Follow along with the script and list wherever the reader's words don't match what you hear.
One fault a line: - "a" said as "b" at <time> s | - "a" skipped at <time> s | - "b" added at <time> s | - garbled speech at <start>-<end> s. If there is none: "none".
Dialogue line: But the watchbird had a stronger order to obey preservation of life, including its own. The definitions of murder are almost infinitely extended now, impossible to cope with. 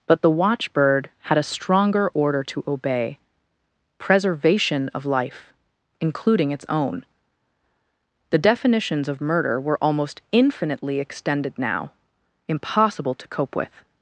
- "are" said as "were" at 9.6 s